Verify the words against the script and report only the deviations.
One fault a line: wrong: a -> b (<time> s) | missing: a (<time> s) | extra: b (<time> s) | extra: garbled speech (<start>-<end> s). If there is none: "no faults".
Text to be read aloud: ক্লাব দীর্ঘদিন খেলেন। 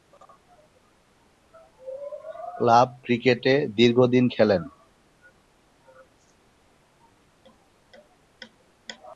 extra: ক্রিকেটে (3.0 s)